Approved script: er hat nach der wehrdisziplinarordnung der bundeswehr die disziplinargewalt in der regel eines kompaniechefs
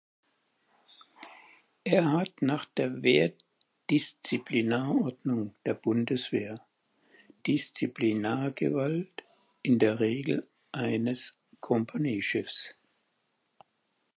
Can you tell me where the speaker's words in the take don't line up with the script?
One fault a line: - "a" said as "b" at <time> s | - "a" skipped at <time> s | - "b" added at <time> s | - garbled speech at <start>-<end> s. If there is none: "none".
- "die" skipped at 6.6 s